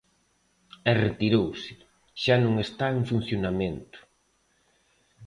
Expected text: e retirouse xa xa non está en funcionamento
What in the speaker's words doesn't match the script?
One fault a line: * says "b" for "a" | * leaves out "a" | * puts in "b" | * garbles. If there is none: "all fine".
* leaves out "xa"